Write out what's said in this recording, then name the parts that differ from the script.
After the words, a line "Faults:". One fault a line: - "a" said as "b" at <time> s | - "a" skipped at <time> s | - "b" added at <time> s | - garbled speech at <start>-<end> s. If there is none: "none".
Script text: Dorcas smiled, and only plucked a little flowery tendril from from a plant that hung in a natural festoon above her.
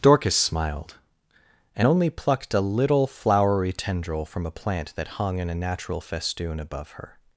Dorcas smiled, and only plucked a little flowery tendril from a plant that hung in a natural festoon above her.
Faults:
- "from" skipped at 4.5 s